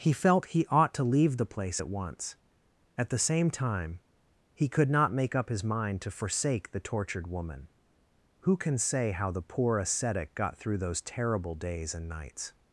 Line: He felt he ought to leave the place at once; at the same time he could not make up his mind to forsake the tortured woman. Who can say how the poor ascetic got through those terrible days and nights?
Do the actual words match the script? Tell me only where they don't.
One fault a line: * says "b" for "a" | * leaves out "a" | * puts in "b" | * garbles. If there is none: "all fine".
all fine